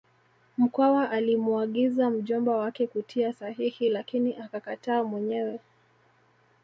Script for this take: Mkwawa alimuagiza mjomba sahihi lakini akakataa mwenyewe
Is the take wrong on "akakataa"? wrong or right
right